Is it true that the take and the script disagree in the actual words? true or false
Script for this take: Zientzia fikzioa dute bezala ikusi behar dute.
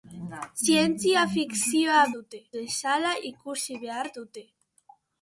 false